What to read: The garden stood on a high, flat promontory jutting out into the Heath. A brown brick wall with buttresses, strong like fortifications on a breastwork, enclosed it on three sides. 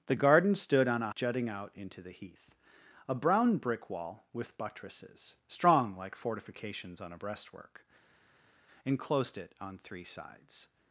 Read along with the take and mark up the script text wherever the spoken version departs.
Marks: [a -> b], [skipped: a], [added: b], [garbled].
The garden stood on a [skipped: high, flat promontory] jutting out into the Heath. A brown brick wall with buttresses, strong like fortifications on a breastwork, enclosed it on three sides.